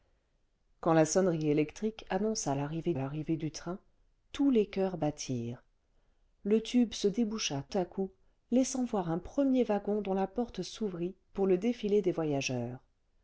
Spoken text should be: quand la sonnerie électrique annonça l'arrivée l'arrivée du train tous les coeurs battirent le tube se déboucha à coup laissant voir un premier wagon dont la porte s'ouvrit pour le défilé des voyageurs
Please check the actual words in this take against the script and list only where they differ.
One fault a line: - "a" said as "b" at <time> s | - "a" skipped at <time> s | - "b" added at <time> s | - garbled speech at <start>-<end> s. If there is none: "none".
none